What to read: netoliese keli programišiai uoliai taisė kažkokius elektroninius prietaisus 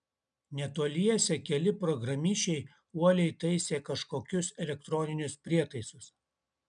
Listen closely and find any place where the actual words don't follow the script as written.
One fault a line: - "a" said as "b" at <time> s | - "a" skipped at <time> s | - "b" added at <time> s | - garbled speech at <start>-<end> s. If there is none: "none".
none